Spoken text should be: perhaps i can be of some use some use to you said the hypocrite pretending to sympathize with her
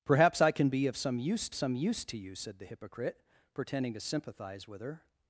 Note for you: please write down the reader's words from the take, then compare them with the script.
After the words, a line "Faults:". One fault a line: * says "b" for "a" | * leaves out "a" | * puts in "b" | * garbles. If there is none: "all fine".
perhaps i can be of some use some use to you said the hypocrite pretending to sympathize with her
Faults:
all fine